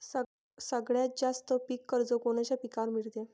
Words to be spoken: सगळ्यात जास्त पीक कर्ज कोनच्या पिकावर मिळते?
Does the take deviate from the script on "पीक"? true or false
false